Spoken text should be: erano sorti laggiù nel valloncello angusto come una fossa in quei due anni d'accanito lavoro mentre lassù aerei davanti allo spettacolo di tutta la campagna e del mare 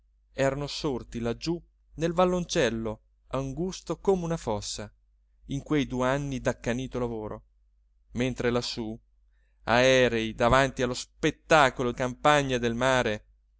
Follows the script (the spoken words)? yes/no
no